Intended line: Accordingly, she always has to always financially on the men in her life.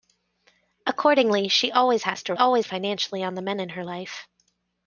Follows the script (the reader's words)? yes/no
yes